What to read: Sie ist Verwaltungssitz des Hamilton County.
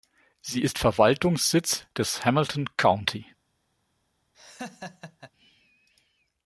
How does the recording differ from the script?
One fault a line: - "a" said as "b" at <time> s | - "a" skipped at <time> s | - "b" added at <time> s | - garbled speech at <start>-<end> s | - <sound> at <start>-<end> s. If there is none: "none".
- laugh at 4.3-5.3 s